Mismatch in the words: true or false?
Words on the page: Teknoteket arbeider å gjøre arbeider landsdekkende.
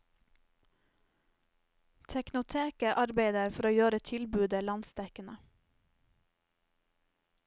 true